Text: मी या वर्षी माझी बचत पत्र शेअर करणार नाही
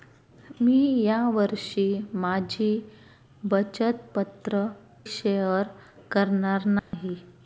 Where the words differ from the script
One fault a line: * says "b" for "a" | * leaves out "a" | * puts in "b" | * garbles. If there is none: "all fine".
all fine